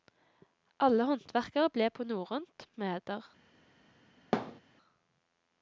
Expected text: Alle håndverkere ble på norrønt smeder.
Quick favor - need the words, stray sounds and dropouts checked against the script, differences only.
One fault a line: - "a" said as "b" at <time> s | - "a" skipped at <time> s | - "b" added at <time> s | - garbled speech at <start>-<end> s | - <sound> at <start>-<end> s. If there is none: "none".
- thud at 4.3-4.6 s